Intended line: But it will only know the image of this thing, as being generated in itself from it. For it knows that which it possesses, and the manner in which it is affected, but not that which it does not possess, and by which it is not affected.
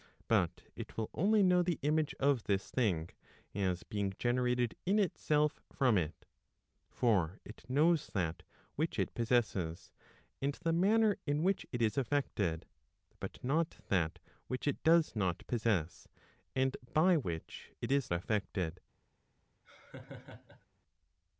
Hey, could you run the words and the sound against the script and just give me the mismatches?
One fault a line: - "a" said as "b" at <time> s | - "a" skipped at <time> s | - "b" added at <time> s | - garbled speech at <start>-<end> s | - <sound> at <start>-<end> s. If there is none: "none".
- "not" skipped at 18.1 s
- laugh at 19.6-20.7 s